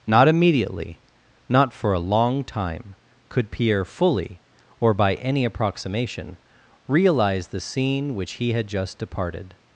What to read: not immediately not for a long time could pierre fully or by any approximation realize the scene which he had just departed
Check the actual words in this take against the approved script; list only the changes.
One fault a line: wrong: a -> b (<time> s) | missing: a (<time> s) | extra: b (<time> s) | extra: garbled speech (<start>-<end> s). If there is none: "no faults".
no faults